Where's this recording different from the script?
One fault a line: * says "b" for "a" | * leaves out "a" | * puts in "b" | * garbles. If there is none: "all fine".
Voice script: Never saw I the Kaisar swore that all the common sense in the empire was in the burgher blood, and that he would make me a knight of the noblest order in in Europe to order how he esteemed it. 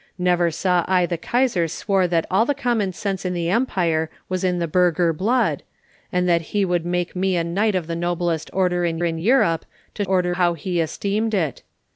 all fine